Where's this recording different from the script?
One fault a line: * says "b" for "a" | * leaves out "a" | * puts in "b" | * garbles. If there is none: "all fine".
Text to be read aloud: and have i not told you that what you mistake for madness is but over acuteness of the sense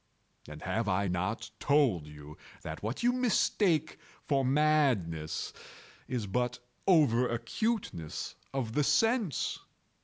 all fine